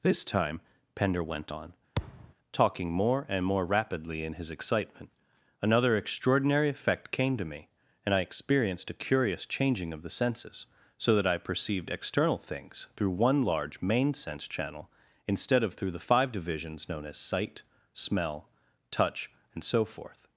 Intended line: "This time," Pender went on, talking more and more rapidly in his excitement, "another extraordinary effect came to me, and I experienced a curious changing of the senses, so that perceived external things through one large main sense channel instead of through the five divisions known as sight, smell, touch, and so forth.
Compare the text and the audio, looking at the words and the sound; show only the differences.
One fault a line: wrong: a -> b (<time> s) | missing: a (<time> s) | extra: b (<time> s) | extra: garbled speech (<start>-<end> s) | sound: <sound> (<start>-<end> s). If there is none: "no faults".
sound: thud (2.0-2.3 s)
extra: I (11.2 s)